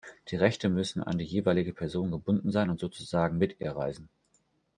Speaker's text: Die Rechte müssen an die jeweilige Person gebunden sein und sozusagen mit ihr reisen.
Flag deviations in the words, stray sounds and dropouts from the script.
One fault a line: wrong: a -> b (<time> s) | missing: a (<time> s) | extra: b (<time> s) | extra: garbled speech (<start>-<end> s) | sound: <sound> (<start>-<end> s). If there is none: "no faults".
no faults